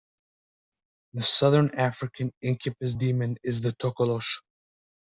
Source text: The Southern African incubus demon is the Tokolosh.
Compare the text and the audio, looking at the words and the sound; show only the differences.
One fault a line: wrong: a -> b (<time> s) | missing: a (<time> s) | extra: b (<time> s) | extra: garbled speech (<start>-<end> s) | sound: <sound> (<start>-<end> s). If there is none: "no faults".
no faults